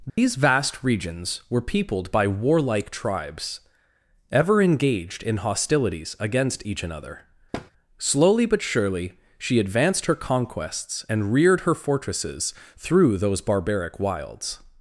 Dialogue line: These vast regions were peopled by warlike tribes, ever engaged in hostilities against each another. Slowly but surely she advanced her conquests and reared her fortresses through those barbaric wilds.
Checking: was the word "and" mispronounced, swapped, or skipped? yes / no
no